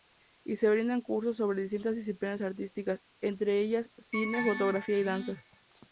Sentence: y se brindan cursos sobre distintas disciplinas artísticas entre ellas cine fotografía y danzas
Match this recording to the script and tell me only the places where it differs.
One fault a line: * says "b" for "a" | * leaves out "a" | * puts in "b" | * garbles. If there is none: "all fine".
all fine